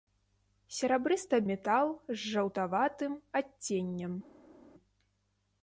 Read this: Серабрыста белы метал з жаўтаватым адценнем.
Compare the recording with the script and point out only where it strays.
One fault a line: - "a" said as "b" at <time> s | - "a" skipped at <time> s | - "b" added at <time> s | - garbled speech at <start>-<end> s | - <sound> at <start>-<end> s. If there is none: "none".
- "белы" skipped at 1.4 s